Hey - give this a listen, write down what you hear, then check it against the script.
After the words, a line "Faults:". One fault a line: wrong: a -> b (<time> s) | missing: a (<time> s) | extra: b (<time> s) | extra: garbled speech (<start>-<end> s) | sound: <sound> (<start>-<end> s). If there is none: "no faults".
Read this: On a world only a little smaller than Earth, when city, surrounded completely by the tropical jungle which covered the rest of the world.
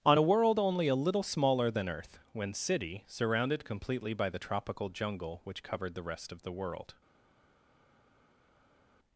On a world only a little smaller than Earth, when city, surrounded completely by the tropical jungle which covered the rest of the world.
Faults:
no faults